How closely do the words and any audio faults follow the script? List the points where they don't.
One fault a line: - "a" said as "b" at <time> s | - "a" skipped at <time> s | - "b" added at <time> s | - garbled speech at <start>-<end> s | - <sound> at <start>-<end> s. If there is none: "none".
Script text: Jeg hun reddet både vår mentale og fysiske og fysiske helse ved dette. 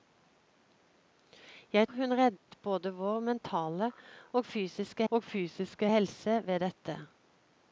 - dropout at 2.4-2.5 s